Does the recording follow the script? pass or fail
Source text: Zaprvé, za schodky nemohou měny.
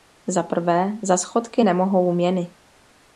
pass